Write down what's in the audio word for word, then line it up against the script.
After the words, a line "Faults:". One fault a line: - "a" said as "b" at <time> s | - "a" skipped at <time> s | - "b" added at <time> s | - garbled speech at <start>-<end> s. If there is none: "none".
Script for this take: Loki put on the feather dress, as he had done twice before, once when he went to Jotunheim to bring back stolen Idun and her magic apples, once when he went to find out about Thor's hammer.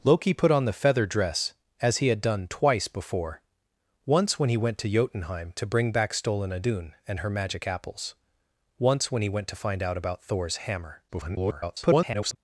Loki put on the feather dress, as he had done twice before, once when he went to Jotunheim to bring back stolen Idun and her magic apples, once when he went to find out about Thor's hammer. [garbled]
Faults:
- garbled speech at 11.1-12.4 s